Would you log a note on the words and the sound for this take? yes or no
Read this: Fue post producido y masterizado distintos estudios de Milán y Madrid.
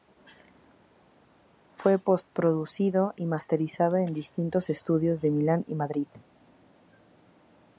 yes